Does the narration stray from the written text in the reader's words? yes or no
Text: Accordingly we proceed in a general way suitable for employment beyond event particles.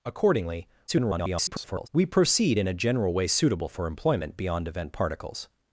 yes